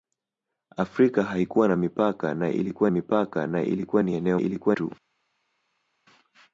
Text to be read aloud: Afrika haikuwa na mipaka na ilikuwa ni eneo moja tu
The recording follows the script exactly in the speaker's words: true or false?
false